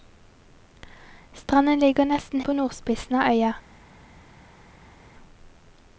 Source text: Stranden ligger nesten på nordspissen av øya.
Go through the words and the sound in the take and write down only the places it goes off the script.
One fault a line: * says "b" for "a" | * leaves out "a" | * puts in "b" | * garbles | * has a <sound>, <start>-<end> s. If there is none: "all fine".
all fine